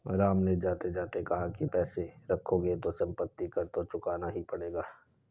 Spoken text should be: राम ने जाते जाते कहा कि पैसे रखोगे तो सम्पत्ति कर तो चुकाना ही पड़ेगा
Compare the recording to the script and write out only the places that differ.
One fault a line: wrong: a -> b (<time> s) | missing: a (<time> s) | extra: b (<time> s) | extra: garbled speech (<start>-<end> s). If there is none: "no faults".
no faults